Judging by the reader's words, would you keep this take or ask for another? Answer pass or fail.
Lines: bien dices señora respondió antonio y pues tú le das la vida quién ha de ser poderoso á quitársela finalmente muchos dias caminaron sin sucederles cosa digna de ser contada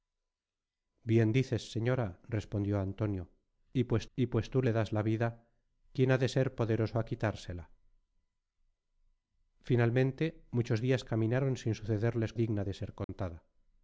fail